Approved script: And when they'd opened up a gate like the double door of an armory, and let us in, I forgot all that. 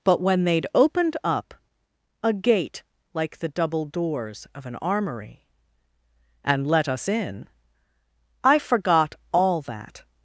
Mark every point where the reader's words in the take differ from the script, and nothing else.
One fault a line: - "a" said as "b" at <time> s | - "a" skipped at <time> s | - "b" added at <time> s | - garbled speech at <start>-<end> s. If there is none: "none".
- "And" said as "But" at 0.0 s
- "door" said as "doors" at 3.9 s